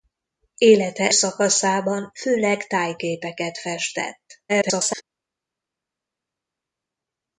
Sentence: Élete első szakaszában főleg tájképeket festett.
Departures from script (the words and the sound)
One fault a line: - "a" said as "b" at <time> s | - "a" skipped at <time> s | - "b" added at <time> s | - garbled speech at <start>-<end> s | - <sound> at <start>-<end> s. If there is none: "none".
- "első" skipped at 1.1 s
- garbled speech at 4.5-5.0 s